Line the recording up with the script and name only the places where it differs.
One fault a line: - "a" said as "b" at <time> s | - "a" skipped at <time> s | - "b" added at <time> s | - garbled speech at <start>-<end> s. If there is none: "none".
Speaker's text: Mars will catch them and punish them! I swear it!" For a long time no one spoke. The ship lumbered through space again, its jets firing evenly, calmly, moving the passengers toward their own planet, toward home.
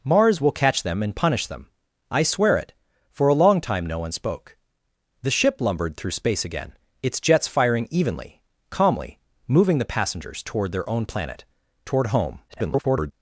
- garbled speech at 12.5-13.1 s